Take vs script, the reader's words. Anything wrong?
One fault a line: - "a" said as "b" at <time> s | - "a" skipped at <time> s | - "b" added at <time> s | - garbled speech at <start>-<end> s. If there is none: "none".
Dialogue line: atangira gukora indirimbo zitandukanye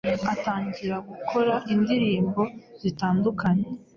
none